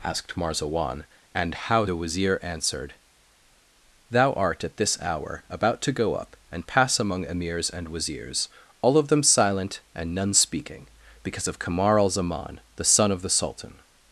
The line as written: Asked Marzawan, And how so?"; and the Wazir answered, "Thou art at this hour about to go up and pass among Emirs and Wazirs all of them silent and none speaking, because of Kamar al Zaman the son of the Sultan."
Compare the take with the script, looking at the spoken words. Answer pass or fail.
fail